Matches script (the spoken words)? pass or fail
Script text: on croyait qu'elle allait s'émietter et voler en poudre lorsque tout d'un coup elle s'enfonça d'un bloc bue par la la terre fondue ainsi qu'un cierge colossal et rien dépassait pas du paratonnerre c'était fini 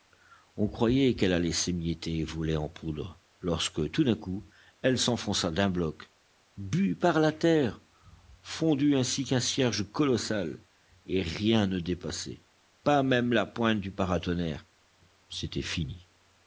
fail